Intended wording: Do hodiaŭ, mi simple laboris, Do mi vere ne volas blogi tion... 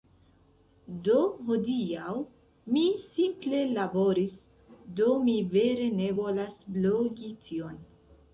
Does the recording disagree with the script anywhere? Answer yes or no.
no